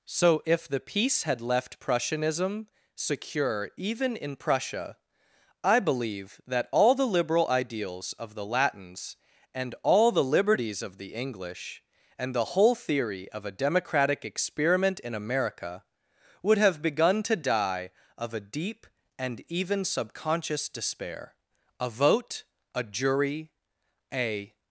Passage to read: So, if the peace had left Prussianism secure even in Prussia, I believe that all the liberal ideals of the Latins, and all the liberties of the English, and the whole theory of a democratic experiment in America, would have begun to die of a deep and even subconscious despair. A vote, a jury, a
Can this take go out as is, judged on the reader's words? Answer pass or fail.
pass